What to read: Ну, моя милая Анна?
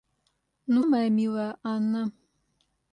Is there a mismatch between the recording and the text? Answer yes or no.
no